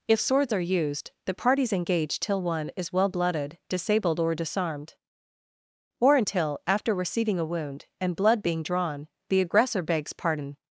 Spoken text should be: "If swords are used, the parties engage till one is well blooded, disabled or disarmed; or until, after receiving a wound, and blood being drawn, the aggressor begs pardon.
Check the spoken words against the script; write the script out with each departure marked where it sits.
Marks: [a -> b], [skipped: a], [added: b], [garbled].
"If swords are used, the parties engage till one is well blooded, disabled or disarmed; or until, after receiving a wound, and blood being drawn, the aggressor begs pardon.